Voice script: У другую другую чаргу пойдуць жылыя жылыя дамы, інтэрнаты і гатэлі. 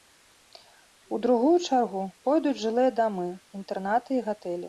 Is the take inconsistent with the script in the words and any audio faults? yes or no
yes